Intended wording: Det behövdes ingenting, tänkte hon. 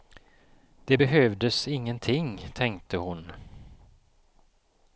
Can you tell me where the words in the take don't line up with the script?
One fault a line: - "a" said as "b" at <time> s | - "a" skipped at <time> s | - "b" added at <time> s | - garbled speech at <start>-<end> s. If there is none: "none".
none